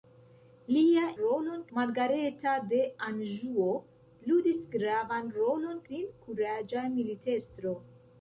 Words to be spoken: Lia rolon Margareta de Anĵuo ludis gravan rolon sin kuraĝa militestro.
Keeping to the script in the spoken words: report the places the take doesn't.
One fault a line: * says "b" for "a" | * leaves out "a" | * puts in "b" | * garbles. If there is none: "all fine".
all fine